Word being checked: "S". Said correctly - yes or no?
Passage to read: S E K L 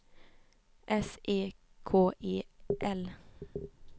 yes